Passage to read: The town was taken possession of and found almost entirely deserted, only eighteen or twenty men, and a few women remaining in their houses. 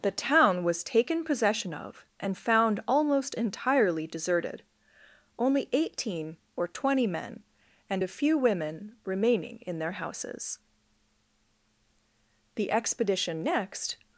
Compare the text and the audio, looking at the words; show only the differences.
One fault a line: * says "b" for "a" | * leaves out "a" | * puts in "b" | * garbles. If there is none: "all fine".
* puts in "The expedition next"